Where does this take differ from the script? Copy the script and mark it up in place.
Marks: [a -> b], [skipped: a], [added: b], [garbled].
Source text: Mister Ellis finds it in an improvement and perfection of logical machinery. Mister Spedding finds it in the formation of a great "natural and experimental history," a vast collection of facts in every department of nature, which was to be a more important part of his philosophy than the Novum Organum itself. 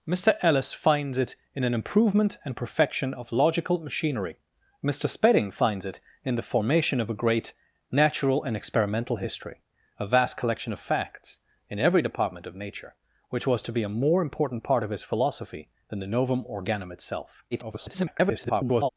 Mister Ellis finds it in an improvement and perfection of logical machinery. Mister Spedding finds it in the formation of a great "natural and experimental history," a vast collection of facts in every department of nature, which was to be a more important part of his philosophy than the Novum Organum itself. [garbled]